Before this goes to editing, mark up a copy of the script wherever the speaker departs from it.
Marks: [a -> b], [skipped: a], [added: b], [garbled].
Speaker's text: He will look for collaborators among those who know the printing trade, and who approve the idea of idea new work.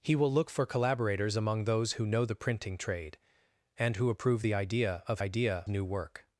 He will look for collaborators among those who know the printing trade, and who approve the idea of idea new work.